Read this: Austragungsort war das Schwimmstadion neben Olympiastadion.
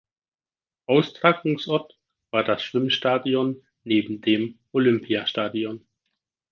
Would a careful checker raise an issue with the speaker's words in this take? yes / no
yes